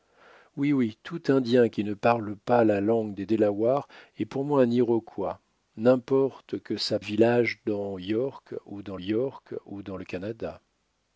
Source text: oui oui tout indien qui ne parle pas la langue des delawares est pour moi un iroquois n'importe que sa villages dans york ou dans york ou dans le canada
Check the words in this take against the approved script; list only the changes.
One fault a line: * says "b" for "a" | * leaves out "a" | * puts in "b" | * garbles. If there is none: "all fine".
all fine